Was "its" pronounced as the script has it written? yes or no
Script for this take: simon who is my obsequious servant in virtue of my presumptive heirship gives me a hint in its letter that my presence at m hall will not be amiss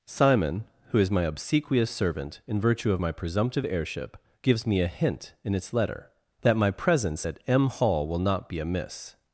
yes